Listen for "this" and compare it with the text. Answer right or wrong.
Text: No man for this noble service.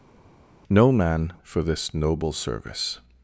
right